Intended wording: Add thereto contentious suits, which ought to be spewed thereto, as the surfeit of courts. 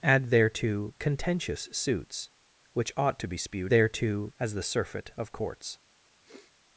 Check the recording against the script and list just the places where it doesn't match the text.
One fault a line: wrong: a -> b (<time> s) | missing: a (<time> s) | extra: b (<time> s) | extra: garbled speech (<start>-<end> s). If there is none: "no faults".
no faults